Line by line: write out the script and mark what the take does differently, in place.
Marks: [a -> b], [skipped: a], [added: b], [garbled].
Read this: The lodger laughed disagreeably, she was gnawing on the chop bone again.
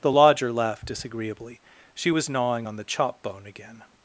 The lodger laughed disagreeably, she was gnawing on the chop bone again.